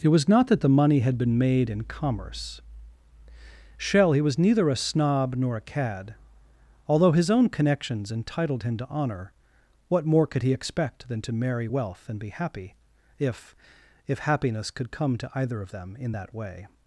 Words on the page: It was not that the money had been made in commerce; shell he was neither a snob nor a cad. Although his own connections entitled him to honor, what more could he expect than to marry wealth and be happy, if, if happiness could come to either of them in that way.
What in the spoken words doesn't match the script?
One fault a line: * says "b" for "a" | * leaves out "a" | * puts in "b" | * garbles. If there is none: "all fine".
all fine